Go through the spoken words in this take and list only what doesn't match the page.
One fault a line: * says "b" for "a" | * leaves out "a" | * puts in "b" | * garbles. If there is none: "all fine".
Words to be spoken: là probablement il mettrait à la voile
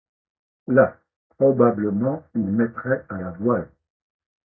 all fine